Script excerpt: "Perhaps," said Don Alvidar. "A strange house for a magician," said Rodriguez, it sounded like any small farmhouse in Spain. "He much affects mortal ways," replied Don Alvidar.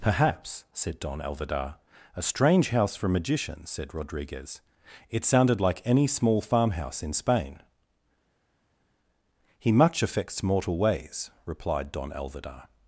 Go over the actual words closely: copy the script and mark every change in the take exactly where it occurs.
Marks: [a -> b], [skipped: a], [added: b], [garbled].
"Perhaps," said Don Alvidar. "A strange house for a magician," said Rodriguez, it sounded like any small farmhouse in Spain. "He much affects mortal ways," replied Don Alvidar.